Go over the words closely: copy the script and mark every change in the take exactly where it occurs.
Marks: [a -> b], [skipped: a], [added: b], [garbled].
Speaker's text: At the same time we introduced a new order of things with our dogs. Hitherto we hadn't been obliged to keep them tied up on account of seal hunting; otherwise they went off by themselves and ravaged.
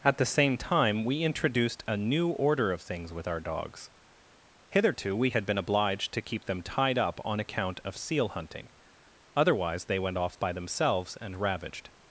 At the same time we introduced a new order of things with our dogs. Hitherto we [hadn't -> had] been obliged to keep them tied up on account of seal hunting; otherwise they went off by themselves and ravaged.